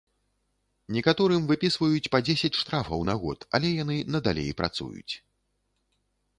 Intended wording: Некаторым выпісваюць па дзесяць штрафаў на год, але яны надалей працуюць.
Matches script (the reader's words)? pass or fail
pass